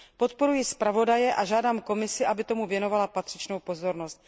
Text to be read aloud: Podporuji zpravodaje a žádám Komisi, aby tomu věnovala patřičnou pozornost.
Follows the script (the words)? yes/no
yes